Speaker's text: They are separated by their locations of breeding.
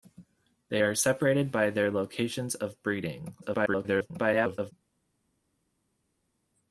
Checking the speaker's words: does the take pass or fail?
fail